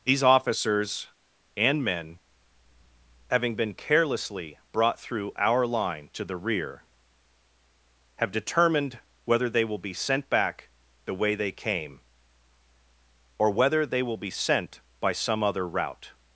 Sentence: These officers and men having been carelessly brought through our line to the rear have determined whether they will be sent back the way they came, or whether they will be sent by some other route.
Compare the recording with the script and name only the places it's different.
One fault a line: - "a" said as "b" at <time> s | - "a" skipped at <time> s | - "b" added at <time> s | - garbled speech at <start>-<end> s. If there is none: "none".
none